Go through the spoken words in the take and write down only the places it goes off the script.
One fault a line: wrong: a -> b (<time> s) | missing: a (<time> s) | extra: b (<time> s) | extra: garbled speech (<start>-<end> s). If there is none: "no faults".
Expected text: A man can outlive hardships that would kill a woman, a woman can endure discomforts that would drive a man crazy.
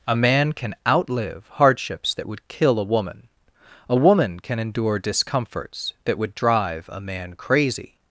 no faults